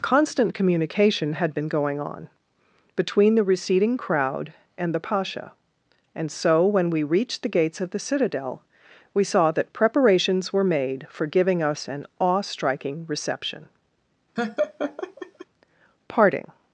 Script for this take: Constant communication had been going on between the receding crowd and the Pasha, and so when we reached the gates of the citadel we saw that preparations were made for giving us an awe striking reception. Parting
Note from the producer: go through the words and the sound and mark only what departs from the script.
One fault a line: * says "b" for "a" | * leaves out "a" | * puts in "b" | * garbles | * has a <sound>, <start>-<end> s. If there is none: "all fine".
* has a laugh, 14.4-15.5 s